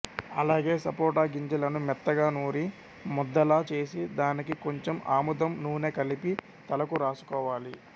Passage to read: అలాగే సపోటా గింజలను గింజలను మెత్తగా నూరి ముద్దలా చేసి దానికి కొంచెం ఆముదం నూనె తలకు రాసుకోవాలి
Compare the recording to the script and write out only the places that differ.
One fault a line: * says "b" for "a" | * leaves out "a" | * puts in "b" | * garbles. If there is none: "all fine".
* leaves out "గింజలను"
* puts in "కలిపి"